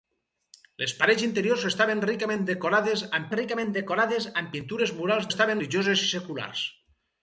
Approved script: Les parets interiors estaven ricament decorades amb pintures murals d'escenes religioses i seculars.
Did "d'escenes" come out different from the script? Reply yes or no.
yes